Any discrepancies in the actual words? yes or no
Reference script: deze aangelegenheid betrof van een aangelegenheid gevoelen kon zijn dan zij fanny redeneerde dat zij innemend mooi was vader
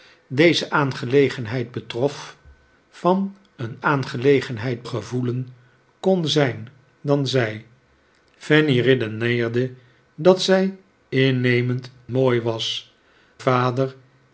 no